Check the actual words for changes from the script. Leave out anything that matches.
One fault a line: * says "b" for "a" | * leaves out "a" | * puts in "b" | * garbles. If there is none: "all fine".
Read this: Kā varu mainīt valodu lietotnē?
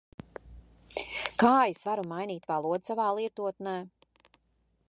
* puts in "es"
* puts in "savā"